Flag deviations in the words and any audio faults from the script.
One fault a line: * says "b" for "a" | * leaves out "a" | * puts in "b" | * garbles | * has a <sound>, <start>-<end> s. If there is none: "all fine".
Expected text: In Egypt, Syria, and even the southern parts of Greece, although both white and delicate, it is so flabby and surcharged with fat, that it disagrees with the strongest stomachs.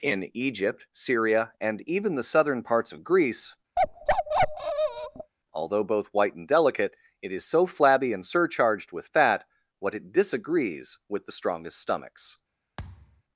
* has a bark, 3.8-5.3 s
* says "what" for "that"
* has a thud, 12.8-13.2 s